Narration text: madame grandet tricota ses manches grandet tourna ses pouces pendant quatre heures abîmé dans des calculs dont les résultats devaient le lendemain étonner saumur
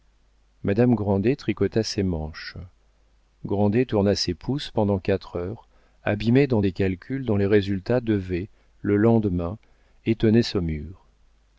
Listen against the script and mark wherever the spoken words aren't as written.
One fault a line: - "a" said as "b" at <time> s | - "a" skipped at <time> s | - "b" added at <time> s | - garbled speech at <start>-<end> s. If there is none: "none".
none